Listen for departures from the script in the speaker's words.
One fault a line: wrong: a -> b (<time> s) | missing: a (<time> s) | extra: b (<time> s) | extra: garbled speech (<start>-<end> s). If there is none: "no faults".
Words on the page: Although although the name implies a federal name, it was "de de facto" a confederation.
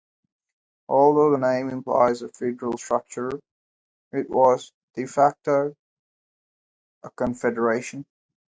missing: although (1.3 s)
wrong: name -> structure (2.8 s)
missing: de (5.1 s)